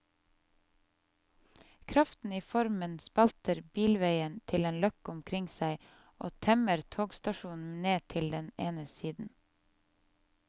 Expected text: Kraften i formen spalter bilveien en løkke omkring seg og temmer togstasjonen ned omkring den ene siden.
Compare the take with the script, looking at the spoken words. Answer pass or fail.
fail